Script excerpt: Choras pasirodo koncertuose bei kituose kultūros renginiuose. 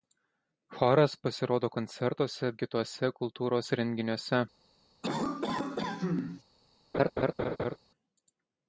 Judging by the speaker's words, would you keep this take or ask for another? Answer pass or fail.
fail